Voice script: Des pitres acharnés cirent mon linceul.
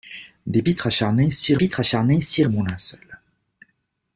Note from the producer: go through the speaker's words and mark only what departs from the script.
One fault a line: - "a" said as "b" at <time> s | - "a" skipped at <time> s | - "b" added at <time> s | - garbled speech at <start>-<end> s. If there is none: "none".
- "pitres acharnés cirent" added at 1.5 s